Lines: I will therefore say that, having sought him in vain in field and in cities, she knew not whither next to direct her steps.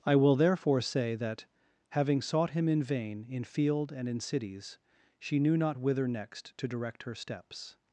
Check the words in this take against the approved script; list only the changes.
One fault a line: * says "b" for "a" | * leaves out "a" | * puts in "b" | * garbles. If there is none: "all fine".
all fine